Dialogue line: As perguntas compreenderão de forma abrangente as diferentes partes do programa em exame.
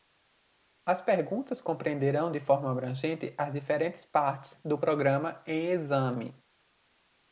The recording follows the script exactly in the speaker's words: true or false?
true